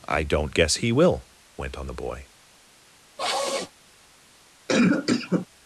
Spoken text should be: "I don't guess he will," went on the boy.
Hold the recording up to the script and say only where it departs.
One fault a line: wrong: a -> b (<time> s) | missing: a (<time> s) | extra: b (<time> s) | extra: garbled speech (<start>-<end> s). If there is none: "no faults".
no faults